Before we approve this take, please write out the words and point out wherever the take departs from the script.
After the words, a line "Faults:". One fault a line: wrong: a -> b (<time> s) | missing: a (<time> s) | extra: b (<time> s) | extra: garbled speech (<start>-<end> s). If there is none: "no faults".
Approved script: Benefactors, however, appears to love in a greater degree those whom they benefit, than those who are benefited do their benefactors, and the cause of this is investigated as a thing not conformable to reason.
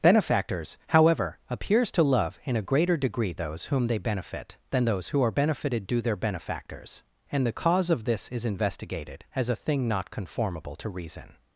Benefactors, however, appears to love in a greater degree those whom they benefit, than those who are benefited do their benefactors, and the cause of this is investigated as a thing not conformable to reason.
Faults:
no faults